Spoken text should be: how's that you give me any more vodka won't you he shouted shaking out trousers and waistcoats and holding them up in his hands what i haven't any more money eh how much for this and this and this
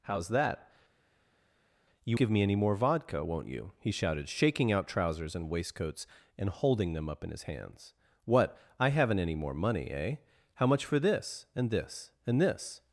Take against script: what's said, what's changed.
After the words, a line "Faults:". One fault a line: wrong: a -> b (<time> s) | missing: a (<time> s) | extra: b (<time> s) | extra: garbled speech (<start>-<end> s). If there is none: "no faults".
how's that you give me any more vodka won't you he shouted shaking out trousers and waistcoats and holding them up in his hands what i haven't any more money eh how much for this and this and this
Faults:
no faults